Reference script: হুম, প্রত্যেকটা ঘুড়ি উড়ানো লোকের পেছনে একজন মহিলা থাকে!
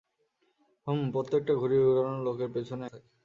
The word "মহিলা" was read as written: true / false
false